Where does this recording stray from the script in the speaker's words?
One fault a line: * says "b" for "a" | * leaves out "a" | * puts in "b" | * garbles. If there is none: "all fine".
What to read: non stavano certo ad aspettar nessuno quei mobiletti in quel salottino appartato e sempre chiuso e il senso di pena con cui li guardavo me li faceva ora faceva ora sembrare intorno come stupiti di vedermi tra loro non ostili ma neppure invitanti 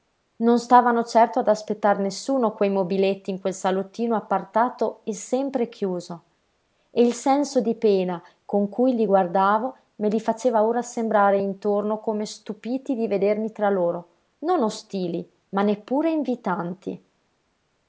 * leaves out "faceva ora"